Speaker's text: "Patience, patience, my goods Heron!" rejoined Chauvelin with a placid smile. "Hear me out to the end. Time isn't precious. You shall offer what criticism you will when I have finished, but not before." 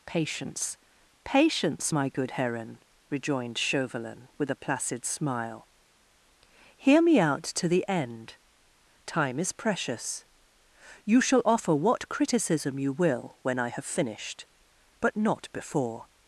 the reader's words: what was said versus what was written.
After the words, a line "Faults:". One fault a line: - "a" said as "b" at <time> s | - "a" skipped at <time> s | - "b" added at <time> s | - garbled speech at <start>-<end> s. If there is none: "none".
"Patience, patience, my good Heron!" rejoined Chauvelin with a placid smile. "Hear me out to the end. Time is precious. You shall offer what criticism you will when I have finished, but not before."
Faults:
- "goods" said as "good" at 2.1 s
- "isn't" said as "is" at 9.4 s